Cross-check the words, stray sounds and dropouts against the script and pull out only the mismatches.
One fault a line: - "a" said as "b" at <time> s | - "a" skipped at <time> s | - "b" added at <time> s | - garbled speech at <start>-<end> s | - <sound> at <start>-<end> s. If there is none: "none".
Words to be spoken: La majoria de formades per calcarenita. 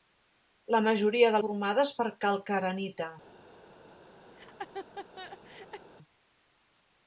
- laugh at 4.3-5.9 s